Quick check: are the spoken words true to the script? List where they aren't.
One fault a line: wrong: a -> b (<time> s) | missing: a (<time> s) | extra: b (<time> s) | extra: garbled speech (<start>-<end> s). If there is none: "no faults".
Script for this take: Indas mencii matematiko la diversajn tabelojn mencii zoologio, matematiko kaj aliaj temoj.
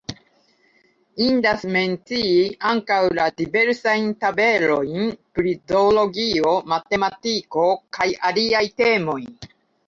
wrong: matematiko -> ankaŭ (2.7 s)
wrong: mencii -> pri (5.4 s)